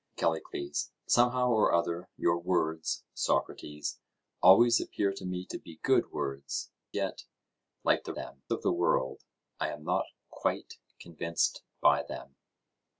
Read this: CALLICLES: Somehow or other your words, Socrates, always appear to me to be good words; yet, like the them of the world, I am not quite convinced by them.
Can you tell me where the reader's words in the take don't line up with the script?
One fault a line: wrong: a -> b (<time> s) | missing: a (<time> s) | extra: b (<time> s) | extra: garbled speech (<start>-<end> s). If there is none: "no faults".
no faults